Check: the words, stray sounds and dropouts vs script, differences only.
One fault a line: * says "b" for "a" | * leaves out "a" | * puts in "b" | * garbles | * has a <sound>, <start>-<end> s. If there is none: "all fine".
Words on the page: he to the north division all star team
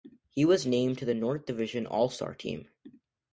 * puts in "was named"